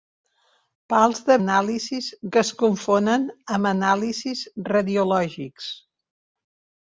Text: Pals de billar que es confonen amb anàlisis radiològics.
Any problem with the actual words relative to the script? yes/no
yes